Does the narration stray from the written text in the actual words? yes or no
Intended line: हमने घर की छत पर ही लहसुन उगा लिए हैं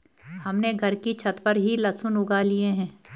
no